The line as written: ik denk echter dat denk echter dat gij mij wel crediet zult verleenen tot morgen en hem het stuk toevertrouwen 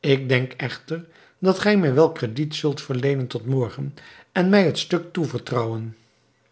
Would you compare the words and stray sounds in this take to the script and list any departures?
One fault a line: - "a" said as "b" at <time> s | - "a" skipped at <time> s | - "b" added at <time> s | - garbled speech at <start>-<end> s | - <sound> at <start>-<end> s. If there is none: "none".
- "denk echter dat" skipped at 1.6 s
- "hem" said as "mij" at 4.5 s